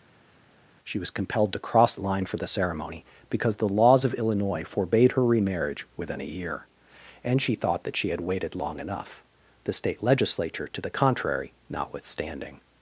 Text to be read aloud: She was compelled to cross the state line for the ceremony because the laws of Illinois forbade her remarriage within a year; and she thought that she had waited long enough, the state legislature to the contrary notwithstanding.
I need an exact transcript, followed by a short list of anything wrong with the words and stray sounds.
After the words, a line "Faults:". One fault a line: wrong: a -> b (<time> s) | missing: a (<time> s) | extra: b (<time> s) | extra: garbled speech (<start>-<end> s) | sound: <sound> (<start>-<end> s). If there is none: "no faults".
She was compelled to cross line for the ceremony because the laws of Illinois forbade her remarriage within a year; and she thought that she had waited long enough, the state legislature to the contrary notwithstanding.
Faults:
missing: the state (1.9 s)